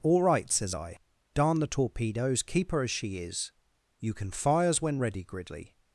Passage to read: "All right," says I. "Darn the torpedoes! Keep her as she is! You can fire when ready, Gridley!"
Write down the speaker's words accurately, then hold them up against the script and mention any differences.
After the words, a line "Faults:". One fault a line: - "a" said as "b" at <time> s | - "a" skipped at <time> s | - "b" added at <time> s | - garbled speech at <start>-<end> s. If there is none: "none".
"All right," says I. "Darn the torpedoes! Keep her as she is! You can fires when ready, Gridley!"
Faults:
- "fire" said as "fires" at 4.3 s